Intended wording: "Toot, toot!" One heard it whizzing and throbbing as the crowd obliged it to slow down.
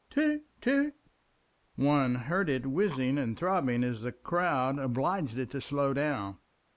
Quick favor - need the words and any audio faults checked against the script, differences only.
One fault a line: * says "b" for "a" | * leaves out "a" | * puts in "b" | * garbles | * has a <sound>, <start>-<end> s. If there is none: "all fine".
all fine